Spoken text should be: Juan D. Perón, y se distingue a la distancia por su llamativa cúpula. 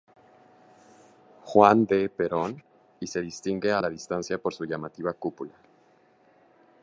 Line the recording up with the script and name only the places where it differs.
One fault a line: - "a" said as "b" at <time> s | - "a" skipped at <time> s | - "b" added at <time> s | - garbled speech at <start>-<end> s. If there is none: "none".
none